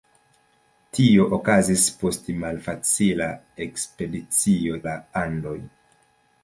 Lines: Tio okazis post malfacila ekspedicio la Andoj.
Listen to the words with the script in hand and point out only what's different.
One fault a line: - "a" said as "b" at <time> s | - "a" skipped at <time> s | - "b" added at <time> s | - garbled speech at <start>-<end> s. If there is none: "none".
none